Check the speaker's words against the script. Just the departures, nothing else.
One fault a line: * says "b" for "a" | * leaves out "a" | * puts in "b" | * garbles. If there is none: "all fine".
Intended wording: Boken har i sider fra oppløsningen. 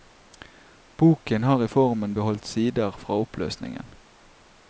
* puts in "formen beholdt"